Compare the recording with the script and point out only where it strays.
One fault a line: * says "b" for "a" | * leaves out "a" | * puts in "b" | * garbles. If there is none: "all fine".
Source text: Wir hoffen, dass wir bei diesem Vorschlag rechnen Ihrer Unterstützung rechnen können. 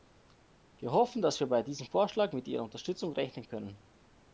* says "mit" for "rechnen"